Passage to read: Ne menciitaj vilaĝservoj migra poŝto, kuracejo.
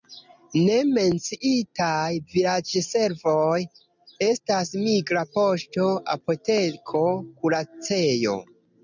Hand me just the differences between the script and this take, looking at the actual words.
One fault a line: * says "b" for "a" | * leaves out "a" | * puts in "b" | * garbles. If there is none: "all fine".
* puts in "estas"
* puts in "apoteko"